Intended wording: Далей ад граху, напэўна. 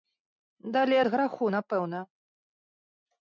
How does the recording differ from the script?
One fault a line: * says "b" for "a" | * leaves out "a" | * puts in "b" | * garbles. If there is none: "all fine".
all fine